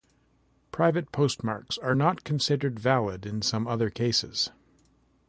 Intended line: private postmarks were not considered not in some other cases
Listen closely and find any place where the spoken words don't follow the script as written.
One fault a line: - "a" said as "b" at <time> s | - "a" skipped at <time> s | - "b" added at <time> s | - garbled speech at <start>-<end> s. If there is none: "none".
- "were" said as "are" at 1.8 s
- "not" said as "valid" at 2.8 s